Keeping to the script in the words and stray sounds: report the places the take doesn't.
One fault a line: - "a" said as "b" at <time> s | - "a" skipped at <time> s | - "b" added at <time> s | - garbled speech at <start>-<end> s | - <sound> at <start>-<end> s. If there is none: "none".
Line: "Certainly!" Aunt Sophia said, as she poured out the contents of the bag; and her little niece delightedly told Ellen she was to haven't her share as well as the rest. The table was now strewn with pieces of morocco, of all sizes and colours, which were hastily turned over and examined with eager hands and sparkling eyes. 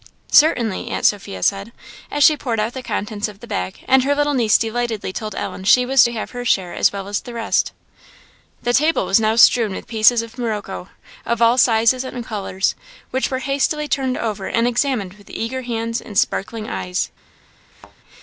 - "haven't" said as "have" at 6.1 s
- thud at 17.7-18.0 s